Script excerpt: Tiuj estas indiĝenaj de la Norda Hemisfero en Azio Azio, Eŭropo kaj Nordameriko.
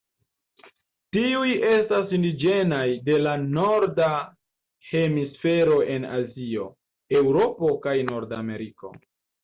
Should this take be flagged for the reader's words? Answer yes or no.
yes